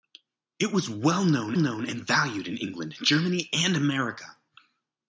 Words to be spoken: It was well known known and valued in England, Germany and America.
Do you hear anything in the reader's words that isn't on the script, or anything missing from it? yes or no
no